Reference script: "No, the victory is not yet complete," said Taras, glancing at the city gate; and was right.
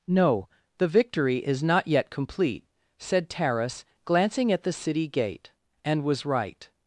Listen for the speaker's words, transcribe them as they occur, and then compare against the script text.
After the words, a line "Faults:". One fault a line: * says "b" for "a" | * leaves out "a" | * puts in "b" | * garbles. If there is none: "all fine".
"No, the victory is not yet complete," said Taras, glancing at the city gate; and was right.
Faults:
all fine